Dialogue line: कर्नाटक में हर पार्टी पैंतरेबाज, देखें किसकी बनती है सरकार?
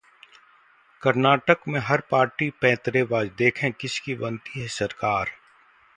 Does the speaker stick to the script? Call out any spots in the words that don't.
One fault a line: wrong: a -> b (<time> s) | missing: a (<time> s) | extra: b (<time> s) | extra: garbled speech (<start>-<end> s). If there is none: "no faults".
no faults